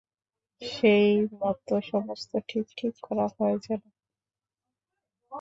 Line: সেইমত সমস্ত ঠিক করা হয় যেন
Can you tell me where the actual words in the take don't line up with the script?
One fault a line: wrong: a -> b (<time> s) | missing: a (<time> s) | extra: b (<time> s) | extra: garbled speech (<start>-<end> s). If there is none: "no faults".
extra: ঠিক (2.8 s)